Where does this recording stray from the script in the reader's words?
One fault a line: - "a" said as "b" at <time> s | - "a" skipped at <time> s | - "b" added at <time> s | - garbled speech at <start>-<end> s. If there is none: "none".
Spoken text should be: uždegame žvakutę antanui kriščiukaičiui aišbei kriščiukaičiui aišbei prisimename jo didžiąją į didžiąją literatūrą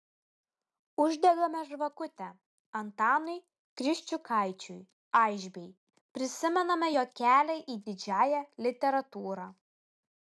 - "kriščiukaičiui aišbei" skipped at 5.7 s
- "didžiąją" said as "kelią" at 7.2 s